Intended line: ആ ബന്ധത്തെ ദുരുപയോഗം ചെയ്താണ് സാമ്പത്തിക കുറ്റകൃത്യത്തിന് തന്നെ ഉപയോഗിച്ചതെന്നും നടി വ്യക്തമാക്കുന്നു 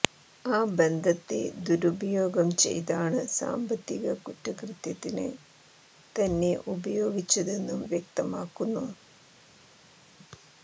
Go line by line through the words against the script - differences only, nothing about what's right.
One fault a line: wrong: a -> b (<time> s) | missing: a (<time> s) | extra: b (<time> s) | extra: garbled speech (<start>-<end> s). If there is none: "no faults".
missing: നടി (7.8 s)